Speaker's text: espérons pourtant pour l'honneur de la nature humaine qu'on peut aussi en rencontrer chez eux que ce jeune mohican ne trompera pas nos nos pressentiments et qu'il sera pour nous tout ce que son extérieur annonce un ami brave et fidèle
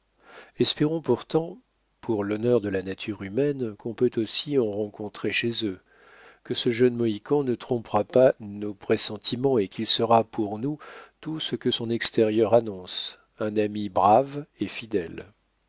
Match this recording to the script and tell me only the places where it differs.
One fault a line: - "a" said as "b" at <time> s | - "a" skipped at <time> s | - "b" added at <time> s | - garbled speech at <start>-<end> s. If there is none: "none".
- "nos" skipped at 8.7 s